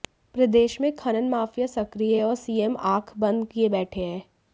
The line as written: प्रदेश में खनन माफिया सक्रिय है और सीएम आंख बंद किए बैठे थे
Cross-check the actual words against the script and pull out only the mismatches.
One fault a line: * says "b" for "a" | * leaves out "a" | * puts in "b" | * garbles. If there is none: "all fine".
* says "हैं" for "थे"